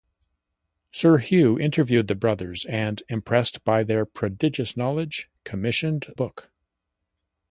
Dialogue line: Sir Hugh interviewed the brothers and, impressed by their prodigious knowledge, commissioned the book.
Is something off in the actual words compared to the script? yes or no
yes